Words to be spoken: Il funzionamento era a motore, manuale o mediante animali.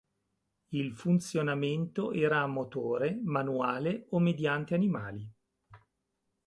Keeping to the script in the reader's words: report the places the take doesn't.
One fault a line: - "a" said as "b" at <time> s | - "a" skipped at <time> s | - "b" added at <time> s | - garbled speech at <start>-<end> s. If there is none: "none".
none